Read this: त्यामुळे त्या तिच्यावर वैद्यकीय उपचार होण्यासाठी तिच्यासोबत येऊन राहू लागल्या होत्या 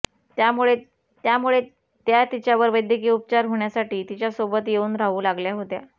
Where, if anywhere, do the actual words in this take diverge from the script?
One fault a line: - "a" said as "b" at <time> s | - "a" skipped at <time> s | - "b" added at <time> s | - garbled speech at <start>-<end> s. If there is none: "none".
- "त्यामुळे" added at 1.2 s